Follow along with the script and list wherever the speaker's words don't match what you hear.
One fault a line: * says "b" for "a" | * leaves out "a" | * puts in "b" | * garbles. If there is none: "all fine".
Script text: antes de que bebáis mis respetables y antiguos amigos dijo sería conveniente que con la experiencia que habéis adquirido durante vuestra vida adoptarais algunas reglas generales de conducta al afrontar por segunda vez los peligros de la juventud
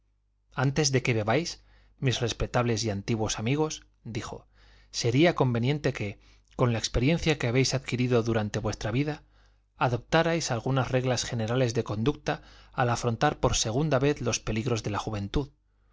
all fine